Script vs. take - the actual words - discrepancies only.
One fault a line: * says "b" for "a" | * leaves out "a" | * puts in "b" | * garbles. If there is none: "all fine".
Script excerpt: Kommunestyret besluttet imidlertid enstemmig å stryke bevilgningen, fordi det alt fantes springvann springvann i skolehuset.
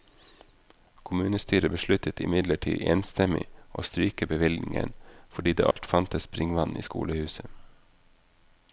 * leaves out "springvann"